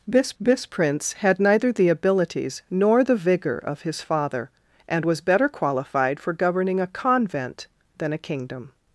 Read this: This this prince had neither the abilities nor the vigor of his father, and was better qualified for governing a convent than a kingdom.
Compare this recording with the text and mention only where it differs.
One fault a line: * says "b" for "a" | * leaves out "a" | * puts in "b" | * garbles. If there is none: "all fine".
all fine